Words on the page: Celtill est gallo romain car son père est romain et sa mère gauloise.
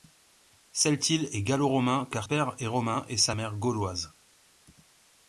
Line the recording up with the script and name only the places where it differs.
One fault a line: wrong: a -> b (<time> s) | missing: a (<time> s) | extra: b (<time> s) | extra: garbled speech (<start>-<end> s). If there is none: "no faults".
missing: son (2.3 s)